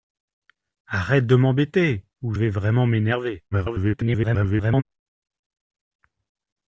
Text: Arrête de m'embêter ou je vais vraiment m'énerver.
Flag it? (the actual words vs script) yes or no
yes